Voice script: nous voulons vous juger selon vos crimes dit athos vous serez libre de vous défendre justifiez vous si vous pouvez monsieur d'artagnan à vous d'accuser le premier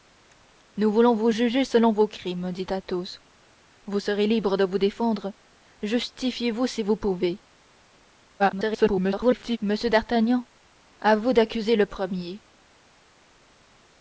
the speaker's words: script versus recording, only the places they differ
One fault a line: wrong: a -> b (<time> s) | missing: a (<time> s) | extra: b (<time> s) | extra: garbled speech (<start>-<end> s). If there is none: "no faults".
extra: garbled speech (8.4-9.6 s)